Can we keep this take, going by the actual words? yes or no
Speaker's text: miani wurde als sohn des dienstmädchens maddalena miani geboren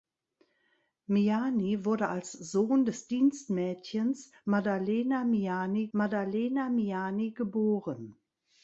no